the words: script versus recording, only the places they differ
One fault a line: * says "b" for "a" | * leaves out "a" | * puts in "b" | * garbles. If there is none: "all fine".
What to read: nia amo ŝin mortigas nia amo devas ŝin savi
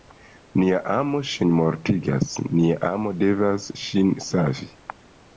all fine